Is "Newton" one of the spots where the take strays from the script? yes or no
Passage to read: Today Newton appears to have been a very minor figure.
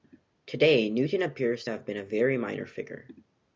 no